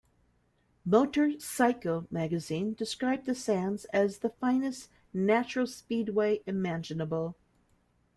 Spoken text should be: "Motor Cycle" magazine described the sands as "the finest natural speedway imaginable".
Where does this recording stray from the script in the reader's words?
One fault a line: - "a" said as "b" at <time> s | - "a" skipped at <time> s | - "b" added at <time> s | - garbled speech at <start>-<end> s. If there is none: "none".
none